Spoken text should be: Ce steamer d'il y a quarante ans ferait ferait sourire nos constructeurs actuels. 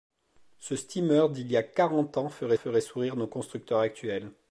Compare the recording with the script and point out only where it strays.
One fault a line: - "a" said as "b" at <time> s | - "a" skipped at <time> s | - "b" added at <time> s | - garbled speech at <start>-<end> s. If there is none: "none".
none